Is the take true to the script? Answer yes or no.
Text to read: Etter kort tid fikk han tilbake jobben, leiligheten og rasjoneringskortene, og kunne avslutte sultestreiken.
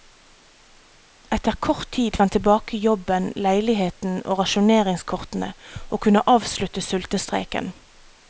no